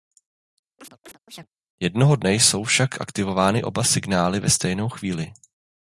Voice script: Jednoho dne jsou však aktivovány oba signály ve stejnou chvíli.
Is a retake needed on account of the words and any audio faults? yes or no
yes